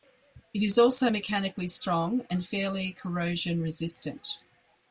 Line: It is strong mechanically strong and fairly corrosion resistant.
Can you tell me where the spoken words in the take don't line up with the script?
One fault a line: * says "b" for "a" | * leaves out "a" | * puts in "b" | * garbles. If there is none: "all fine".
* says "also" for "strong"